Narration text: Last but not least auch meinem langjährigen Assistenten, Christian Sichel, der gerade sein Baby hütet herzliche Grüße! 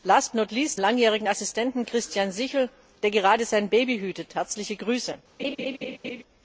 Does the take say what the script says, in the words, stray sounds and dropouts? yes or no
no